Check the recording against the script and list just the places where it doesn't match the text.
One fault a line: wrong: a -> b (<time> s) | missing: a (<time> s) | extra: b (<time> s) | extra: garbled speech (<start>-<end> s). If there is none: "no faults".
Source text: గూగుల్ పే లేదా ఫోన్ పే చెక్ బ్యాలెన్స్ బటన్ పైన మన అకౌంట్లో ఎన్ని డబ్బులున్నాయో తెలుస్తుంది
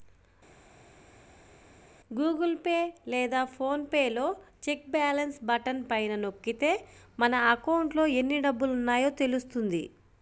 extra: లో (4.1 s)
extra: నొక్కితే (6.2 s)